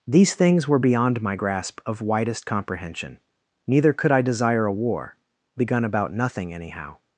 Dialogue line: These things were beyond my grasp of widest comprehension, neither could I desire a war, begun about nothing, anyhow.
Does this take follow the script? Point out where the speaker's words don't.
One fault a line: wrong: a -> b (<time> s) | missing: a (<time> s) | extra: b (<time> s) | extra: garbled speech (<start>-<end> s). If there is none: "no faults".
no faults